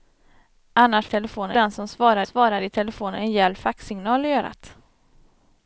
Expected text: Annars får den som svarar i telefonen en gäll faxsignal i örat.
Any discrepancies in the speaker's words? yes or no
yes